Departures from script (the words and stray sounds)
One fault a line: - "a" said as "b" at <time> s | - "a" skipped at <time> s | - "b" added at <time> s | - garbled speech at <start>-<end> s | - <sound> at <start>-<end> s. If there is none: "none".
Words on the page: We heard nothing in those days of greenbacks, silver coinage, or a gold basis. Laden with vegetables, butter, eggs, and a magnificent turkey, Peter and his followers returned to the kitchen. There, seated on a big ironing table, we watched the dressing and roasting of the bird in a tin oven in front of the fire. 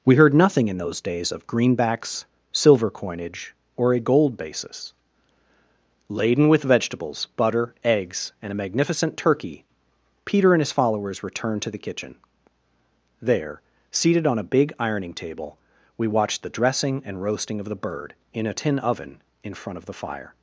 none